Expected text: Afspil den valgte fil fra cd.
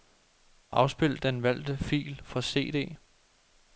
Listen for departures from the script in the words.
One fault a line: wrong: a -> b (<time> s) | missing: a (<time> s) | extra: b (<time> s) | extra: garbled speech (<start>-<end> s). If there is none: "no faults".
no faults